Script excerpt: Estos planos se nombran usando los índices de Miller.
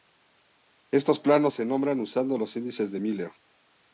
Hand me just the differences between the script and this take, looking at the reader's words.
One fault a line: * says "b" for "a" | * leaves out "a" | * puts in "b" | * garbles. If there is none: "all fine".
all fine